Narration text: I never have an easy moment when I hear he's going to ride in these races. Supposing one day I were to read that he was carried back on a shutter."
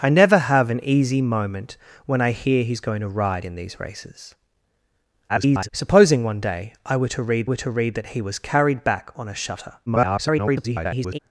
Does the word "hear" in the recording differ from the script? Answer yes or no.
no